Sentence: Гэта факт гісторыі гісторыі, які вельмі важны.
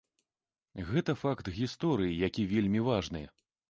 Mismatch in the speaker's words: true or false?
true